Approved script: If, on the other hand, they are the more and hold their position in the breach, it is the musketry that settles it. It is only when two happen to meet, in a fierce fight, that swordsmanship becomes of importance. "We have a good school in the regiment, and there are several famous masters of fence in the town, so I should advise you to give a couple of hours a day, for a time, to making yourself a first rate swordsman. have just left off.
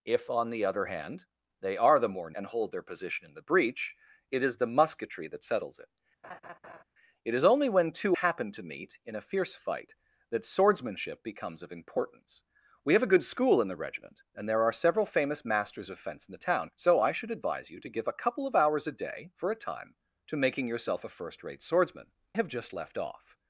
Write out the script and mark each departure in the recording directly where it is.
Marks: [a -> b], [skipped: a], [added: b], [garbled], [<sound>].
If, on the other hand, they are the more and hold their position in the breach, it is the musketry that settles it. [laugh] It is only when two happen to meet, in a fierce fight, that swordsmanship becomes of importance. "We have a good school in the regiment, and there are several famous masters of fence in the town, so I should advise you to give a couple of hours a day, for a time, to making yourself a first rate swordsman. have just left off.